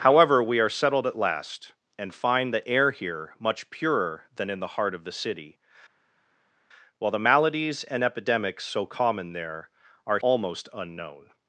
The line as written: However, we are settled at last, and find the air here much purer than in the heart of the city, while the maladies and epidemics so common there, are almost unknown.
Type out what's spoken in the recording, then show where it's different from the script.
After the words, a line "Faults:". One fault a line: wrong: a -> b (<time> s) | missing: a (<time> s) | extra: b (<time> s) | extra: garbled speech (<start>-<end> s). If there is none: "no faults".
However, we are settled at last, and find the air here much purer than in the heart of the city, while the maladies and epidemics so common there, are almost unknown.
Faults:
no faults